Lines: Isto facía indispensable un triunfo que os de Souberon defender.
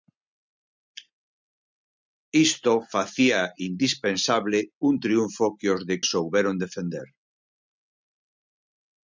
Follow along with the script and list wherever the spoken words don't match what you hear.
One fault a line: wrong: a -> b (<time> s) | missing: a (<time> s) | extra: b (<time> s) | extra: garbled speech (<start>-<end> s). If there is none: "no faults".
no faults